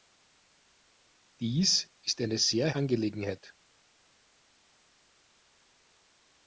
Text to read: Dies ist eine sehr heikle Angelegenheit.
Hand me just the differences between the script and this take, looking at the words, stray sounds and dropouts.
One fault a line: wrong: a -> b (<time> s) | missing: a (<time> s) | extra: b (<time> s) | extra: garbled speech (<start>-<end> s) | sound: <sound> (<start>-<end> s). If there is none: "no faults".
missing: heikle (2.7 s)